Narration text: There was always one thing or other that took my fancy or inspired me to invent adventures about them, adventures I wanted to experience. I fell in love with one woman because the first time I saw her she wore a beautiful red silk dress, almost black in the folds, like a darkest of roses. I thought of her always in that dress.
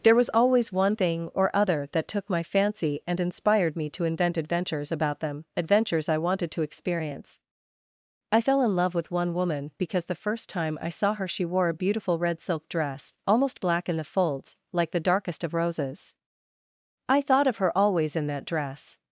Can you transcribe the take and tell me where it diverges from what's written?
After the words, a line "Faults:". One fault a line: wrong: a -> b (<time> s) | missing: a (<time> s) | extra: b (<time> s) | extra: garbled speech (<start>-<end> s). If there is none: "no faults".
There was always one thing or other that took my fancy and inspired me to invent adventures about them, adventures I wanted to experience. I fell in love with one woman because the first time I saw her she wore a beautiful red silk dress, almost black in the folds, like the darkest of roses. I thought of her always in that dress.
Faults:
wrong: or -> and (3.0 s)
wrong: a -> the (14.9 s)